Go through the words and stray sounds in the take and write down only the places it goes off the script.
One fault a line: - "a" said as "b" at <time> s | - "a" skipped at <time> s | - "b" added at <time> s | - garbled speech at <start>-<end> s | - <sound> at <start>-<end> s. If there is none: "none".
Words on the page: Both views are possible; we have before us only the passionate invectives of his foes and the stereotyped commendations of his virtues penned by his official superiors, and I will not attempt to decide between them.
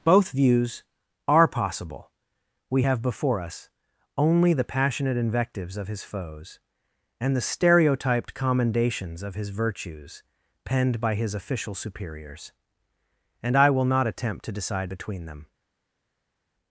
none